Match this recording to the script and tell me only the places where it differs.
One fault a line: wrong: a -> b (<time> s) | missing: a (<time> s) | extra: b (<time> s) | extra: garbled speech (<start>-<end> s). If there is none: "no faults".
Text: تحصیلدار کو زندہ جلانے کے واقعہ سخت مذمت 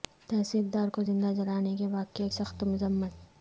no faults